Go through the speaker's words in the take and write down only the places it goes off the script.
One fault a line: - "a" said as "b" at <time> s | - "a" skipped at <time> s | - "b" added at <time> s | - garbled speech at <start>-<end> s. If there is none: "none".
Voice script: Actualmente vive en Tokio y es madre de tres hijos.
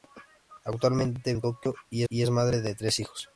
- "vive" skipped at 1.4 s
- "y" added at 2.1 s